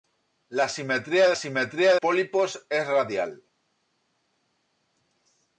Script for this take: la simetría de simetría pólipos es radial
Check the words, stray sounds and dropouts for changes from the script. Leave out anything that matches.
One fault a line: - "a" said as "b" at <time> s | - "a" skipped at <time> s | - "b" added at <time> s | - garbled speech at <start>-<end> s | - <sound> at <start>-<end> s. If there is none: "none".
none